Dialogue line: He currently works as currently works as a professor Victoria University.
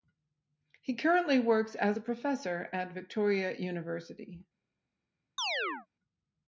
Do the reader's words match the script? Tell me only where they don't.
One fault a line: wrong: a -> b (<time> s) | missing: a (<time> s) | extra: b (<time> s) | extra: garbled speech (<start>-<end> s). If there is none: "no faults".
missing: currently works as (2.0 s)
extra: at (2.7 s)